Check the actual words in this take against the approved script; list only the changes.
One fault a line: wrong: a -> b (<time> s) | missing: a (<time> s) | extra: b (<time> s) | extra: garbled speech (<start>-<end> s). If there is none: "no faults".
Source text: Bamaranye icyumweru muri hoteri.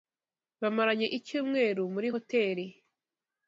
no faults